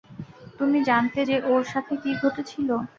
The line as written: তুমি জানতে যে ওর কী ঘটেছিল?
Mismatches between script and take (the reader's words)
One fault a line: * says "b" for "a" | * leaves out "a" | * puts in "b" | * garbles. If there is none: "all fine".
* puts in "সাথে"